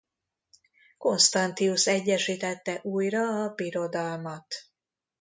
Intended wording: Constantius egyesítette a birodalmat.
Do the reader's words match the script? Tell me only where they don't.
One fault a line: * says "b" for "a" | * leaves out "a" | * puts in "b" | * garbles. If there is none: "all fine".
* puts in "újra"